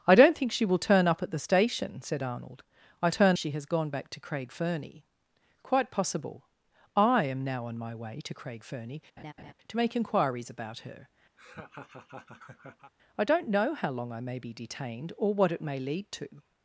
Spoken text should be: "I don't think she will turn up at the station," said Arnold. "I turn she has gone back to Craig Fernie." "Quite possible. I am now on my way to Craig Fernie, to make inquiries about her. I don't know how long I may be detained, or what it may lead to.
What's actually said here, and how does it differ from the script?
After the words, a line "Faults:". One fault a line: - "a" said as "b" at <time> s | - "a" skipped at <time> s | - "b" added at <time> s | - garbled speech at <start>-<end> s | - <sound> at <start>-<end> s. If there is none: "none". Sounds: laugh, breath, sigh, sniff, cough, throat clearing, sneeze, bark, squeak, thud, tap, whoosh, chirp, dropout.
"I don't think she will turn up at the station," said Arnold. "I turn she has gone back to Craig Fernie." "Quite possible. I am now on my way to Craig Fernie, to make inquiries about her. I don't know how long I may be detained, or what it may lead to.
Faults:
- laugh at 9.2-9.5 s
- laugh at 11.4-12.9 s